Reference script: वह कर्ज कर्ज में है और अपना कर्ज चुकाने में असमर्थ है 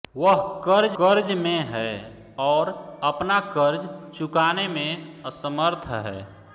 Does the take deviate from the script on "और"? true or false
false